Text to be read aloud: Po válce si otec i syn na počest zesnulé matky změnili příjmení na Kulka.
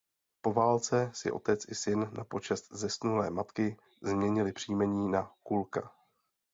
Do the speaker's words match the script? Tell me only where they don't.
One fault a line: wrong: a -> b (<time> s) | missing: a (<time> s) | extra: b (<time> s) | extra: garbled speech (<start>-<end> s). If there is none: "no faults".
no faults